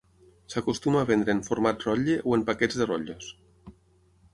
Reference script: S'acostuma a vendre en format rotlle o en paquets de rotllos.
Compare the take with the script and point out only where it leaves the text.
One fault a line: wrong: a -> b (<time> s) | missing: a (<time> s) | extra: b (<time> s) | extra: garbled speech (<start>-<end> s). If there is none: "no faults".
no faults